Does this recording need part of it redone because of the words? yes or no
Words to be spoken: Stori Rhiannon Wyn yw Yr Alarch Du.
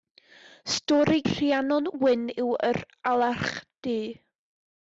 no